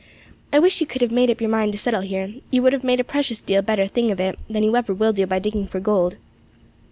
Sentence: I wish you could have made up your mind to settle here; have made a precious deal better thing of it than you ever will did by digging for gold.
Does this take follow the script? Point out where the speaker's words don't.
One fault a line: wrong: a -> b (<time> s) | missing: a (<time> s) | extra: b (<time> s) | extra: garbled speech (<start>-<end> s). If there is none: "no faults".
extra: you would (2.5 s)
wrong: did -> do (5.1 s)